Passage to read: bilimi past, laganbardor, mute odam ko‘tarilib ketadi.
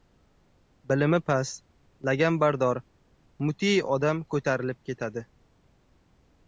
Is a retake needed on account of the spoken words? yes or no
no